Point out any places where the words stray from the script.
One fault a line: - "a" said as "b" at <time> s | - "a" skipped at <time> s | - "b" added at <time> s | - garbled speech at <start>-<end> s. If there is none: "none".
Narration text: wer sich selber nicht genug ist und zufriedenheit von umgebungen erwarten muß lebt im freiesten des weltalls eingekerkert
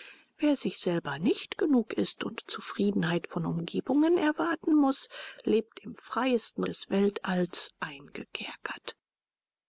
none